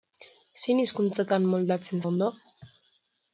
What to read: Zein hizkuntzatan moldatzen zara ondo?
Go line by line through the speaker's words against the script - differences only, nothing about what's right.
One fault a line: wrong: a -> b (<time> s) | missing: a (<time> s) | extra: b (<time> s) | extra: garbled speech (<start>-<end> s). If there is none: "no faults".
missing: zara (2.0 s)